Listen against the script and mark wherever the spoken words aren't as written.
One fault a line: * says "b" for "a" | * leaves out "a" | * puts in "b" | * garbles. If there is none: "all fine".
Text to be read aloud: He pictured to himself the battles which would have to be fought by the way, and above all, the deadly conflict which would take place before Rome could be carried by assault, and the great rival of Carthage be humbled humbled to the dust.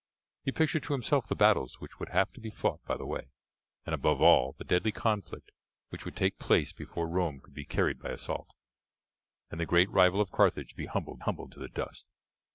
all fine